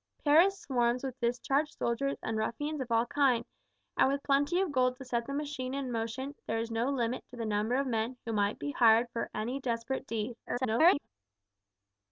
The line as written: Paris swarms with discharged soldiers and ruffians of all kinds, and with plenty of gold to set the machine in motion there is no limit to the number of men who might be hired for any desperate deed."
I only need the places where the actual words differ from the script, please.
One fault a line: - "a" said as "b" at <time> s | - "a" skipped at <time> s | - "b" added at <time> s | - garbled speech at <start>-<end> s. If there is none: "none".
- garbled speech at 10.4-11.1 s